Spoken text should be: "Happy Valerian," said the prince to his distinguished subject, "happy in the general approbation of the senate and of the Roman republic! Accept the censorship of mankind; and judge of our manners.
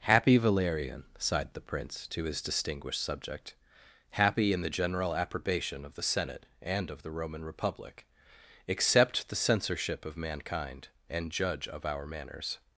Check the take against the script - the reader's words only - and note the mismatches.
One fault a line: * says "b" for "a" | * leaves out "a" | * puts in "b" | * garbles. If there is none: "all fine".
* says "sighed" for "said"